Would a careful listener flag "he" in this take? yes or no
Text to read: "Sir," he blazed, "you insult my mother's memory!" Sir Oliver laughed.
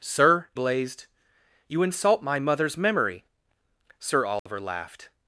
yes